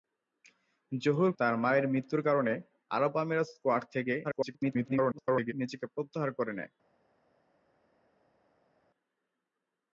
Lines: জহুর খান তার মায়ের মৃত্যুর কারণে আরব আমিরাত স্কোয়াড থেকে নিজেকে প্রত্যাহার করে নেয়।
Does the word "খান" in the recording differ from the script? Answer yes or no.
yes